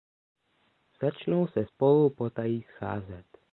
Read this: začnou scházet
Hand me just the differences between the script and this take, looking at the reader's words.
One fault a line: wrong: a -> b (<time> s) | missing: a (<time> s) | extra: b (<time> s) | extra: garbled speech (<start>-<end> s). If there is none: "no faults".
extra: se spolu potají (1.5 s)